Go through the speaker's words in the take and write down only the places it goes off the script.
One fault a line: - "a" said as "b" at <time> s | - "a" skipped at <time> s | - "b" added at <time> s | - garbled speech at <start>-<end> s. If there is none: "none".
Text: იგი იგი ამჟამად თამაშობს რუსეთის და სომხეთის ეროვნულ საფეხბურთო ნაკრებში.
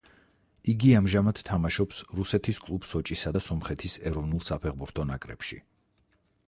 - "იგი" skipped at 0.9 s
- "კლუბ სოჭისა" added at 2.7 s